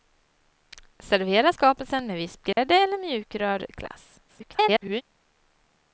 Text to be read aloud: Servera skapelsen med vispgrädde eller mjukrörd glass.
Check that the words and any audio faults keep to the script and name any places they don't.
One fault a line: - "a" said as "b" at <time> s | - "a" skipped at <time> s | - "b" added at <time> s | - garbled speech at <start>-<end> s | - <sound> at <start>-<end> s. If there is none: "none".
- dropout at 2.5-2.6 s
- garbled speech at 4.3-5.0 s